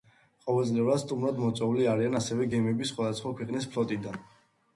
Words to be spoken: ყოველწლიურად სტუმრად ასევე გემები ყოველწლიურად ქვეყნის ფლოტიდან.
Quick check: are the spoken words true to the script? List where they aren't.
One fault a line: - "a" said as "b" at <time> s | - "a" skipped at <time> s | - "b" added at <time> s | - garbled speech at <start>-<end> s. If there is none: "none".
- "მოწვეული არიან" added at 1.4 s
- "ყოველწლიურად" said as "სხვადასხვა" at 2.9 s